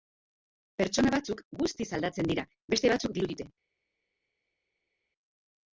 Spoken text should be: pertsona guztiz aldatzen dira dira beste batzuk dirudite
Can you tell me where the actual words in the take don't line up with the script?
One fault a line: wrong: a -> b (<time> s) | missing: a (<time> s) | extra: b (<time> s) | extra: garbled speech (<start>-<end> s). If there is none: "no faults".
extra: batzuk (1.2 s)
missing: dira (2.5 s)